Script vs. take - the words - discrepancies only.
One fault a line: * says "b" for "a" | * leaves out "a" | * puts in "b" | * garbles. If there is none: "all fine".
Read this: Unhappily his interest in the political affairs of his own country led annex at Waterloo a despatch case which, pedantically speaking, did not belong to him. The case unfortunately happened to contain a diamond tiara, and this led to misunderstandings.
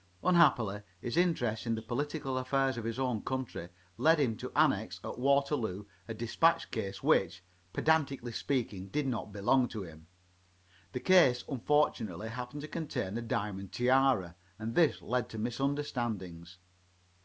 * puts in "him to"